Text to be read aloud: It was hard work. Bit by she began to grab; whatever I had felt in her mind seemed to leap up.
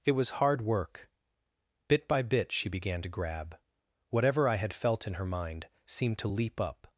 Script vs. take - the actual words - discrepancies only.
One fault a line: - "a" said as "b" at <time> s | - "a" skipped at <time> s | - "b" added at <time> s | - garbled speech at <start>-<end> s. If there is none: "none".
- "bit" added at 2.2 s